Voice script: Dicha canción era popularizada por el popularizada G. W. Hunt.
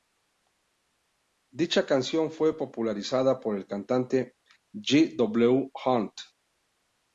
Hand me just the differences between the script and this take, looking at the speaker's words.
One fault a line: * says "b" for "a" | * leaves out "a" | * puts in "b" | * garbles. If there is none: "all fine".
* says "fue" for "era"
* says "cantante" for "popularizada"